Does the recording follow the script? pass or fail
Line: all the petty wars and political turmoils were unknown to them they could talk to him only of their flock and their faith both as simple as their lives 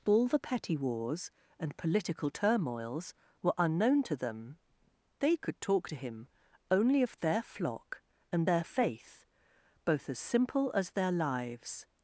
pass